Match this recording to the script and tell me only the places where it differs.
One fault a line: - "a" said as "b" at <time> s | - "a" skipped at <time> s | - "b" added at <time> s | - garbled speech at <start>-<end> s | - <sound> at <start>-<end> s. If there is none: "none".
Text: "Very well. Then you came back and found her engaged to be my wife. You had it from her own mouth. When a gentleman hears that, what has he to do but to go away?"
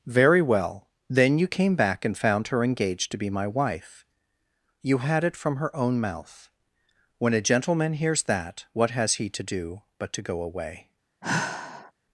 - sigh at 11.2-11.9 s